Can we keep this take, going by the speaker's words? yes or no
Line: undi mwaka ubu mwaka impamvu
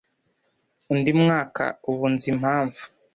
no